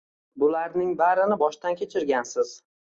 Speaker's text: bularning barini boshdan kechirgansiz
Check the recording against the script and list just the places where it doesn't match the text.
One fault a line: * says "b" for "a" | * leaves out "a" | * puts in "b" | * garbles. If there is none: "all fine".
all fine